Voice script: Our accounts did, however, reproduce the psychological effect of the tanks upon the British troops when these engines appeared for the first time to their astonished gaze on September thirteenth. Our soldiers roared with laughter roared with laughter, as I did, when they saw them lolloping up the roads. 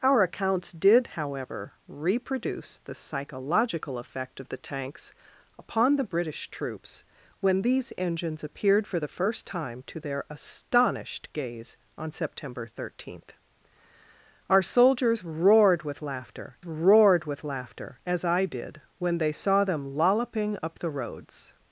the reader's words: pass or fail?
pass